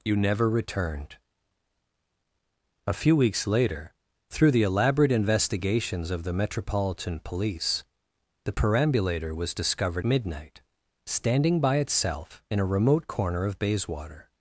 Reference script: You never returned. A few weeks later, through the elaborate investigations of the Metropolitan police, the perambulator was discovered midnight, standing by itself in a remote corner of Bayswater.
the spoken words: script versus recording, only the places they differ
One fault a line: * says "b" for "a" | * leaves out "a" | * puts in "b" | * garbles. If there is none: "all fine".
all fine